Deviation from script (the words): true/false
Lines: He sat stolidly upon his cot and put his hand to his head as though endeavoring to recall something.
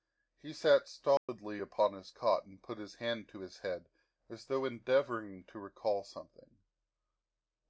false